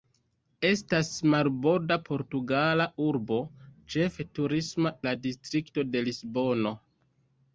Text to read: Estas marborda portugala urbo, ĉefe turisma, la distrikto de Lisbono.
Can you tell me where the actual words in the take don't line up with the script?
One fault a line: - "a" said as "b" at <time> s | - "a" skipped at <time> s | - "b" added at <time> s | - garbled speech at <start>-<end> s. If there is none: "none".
none